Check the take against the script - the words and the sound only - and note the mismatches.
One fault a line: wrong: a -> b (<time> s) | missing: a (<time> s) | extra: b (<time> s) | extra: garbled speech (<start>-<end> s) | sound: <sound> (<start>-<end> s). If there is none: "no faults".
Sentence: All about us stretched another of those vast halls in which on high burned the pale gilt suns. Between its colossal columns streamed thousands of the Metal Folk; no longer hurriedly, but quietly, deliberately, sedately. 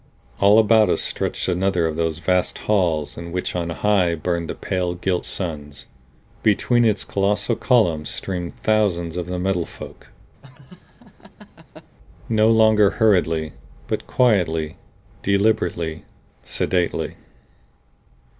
sound: laugh (10.4-12.0 s)